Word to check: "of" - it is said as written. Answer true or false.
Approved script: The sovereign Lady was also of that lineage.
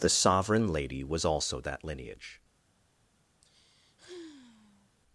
false